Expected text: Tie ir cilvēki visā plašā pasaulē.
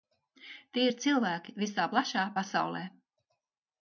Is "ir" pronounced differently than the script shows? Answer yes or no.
no